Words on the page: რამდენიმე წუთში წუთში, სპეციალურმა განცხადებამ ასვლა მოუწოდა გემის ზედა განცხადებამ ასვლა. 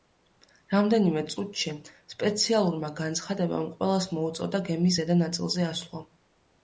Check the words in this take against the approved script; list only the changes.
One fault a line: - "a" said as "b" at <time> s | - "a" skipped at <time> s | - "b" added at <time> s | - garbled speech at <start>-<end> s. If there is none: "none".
- "წუთში" skipped at 1.7 s
- "ასვლა" said as "ყველას" at 3.8 s
- "განცხადებამ" said as "ნაწილზე" at 5.3 s